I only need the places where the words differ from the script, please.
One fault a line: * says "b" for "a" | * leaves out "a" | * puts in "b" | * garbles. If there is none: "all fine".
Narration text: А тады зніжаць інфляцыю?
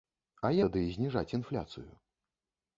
all fine